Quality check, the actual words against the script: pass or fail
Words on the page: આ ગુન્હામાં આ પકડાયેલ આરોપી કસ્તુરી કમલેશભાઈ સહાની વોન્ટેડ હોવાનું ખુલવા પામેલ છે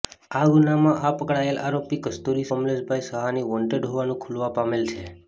pass